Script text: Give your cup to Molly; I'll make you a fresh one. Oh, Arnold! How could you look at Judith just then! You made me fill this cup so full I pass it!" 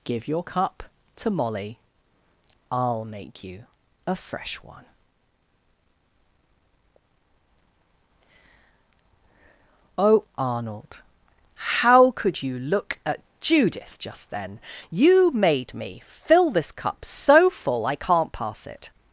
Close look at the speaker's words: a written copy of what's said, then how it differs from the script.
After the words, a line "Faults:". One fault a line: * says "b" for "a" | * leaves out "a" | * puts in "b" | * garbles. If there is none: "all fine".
Give your cup to Molly; I'll make you a fresh one. Oh, Arnold! How could you look at Judith just then! You made me fill this cup so full I can't pass it!"
Faults:
* puts in "can't"